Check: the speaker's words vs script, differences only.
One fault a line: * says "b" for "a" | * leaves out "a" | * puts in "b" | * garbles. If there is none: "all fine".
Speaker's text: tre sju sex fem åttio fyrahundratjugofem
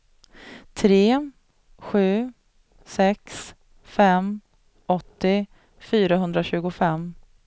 all fine